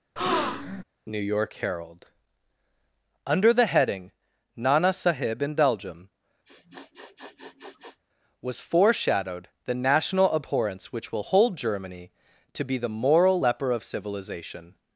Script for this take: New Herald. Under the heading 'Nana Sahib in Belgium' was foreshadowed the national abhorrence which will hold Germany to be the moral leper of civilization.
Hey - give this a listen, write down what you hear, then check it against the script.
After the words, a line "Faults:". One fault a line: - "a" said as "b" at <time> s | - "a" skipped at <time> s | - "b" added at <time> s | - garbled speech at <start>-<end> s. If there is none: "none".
New York Herald. Under the heading 'Nana Sahib in Belgium' was foreshadowed the national abhorrence which will hold Germany to be the moral leper of civilization.
Faults:
- "York" added at 1.2 s